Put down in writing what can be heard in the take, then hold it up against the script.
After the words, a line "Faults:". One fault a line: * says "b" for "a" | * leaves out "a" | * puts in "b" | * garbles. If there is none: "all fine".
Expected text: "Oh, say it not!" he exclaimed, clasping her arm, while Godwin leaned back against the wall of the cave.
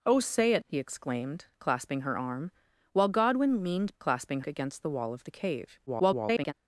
"Oh, say it!" he exclaimed, clasping her arm, while Godwin leaned clasping against the wall of the cave. [garbled]
Faults:
* leaves out "not"
* says "clasping" for "back"
* garbles